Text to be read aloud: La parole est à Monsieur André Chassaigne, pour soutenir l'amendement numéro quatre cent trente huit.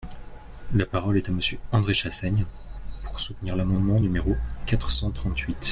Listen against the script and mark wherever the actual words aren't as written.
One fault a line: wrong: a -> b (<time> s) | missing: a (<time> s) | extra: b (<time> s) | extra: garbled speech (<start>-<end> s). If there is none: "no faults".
no faults